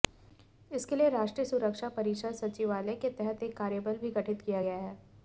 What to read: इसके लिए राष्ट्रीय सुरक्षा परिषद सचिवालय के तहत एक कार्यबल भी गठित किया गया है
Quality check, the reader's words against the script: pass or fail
pass